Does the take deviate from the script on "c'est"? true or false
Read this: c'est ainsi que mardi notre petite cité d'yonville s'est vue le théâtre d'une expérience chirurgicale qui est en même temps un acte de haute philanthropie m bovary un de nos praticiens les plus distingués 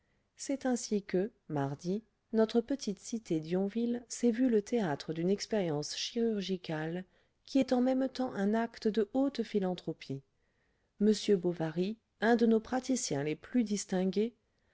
false